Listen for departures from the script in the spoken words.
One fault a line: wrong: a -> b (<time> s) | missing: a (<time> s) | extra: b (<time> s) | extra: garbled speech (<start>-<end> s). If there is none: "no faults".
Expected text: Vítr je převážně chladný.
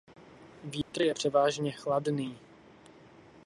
no faults